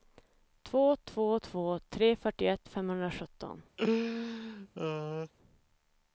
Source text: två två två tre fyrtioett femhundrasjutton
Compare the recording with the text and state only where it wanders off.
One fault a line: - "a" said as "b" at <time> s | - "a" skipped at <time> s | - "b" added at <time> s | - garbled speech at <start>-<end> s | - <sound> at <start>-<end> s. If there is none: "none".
- laugh at 3.8-5.3 s